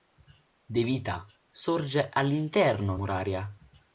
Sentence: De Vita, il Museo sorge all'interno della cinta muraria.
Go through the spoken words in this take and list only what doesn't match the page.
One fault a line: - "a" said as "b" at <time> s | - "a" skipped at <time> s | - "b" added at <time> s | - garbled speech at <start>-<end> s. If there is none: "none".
- "il Museo" skipped at 1.3 s
- "della cinta" skipped at 3.0 s